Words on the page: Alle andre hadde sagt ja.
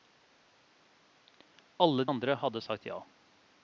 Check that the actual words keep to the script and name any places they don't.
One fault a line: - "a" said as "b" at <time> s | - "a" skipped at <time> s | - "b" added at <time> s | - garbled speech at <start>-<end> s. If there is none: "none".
none